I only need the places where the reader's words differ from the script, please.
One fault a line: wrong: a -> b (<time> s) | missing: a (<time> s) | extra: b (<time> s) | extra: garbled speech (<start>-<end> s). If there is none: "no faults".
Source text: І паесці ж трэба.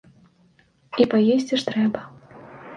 no faults